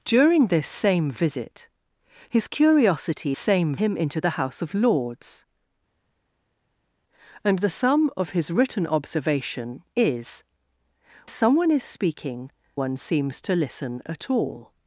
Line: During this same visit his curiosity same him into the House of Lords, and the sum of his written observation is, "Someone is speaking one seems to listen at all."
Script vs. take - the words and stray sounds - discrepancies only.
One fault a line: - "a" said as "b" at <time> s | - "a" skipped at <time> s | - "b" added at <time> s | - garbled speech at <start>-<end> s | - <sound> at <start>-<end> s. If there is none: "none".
none